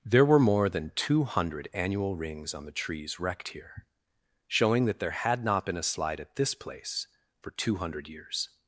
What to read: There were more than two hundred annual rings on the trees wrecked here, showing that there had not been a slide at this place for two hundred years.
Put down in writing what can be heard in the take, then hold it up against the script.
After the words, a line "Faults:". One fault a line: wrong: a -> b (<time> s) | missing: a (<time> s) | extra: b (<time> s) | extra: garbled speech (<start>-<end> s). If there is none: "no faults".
There were more than two hundred annual rings on the trees wrecked here, showing that there had not been a slide at this place for two hundred years.
Faults:
no faults